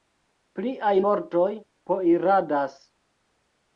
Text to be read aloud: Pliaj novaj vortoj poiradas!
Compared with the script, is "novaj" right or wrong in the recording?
wrong